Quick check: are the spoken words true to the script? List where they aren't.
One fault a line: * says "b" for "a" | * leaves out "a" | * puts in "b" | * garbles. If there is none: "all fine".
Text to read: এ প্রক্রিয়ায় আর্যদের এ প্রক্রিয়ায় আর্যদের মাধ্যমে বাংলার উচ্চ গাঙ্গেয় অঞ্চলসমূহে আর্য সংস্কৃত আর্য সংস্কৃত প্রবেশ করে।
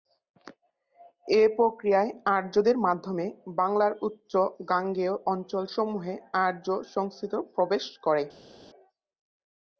* leaves out "এ প্রক্রিয়ায় আর্যদের"
* leaves out "আর্য সংস্কৃত"